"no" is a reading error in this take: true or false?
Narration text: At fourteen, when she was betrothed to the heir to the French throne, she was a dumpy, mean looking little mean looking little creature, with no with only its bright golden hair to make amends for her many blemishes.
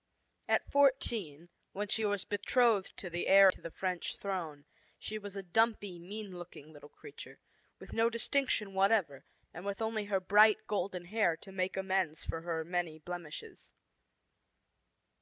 true